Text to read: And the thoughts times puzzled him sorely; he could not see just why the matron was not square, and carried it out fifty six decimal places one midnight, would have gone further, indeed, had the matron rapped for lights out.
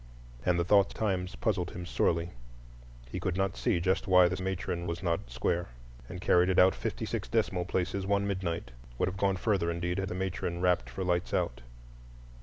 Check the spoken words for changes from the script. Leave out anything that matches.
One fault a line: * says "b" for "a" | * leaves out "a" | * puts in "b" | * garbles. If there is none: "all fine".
all fine